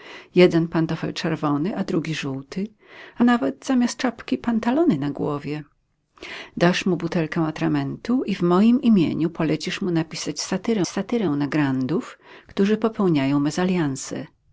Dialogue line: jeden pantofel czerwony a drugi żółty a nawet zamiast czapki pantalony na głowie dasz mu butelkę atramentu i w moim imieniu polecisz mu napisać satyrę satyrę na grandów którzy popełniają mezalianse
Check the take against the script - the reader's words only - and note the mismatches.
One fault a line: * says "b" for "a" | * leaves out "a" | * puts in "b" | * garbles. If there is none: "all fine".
all fine